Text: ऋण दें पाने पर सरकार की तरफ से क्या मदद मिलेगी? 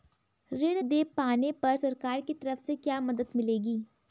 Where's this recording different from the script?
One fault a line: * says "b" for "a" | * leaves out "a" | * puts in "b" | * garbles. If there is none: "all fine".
all fine